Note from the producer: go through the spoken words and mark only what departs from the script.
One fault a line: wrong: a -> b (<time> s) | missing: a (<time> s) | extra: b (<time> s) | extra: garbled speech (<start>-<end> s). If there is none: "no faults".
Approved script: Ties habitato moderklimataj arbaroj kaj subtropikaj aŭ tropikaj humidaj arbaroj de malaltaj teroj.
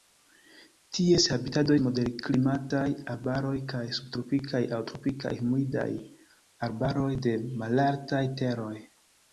no faults